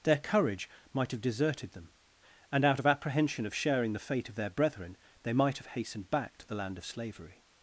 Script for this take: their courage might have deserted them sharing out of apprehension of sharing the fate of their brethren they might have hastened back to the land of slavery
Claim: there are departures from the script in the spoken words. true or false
true